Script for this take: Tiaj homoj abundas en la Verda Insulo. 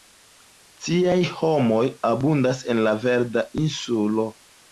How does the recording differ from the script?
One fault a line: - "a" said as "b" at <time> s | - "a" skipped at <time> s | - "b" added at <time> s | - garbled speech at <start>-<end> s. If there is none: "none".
none